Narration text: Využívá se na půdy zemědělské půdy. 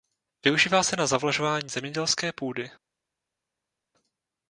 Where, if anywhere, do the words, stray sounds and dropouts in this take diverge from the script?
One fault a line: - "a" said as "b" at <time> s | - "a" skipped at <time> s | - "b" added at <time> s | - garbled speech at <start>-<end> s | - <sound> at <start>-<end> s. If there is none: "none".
- "půdy" said as "zavlažování" at 1.1 s